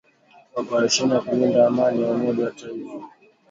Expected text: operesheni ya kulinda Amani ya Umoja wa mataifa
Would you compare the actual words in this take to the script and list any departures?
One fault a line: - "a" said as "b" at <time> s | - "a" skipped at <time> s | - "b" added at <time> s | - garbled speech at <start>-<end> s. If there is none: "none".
none